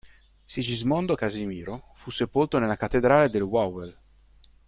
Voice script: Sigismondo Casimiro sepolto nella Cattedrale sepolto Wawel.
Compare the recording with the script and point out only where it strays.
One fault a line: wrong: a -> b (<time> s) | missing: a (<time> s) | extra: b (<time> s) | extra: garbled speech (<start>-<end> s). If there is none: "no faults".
extra: fu (1.9 s)
wrong: sepolto -> del (3.3 s)